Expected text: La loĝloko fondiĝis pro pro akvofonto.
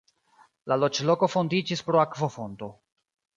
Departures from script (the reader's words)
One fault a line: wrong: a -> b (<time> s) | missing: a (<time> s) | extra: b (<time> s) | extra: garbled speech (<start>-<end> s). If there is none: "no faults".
missing: pro (2.0 s)